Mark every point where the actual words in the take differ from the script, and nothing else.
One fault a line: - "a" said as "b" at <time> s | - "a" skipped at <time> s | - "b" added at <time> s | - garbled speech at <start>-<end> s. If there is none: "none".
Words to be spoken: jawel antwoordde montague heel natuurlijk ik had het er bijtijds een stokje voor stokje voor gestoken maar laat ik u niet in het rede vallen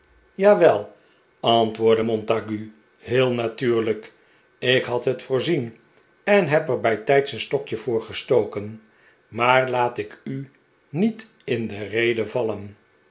- "voorzien en heb" added at 5.2 s
- "stokje voor" skipped at 8.0 s
- "het" said as "de" at 11.7 s